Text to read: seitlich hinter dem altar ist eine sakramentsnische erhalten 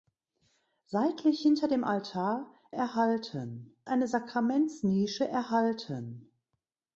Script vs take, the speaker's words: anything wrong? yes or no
yes